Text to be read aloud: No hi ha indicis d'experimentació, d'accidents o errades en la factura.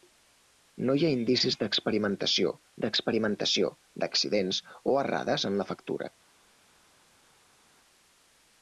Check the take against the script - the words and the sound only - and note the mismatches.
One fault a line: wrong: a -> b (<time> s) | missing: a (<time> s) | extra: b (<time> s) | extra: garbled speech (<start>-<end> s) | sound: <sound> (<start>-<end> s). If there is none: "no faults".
extra: d'experimentació (2.8 s)